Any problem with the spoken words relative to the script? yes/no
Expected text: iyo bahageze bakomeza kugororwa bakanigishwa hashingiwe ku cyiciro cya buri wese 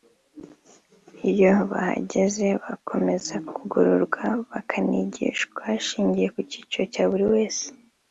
no